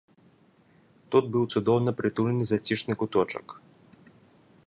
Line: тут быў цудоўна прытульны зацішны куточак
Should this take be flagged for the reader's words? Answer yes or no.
no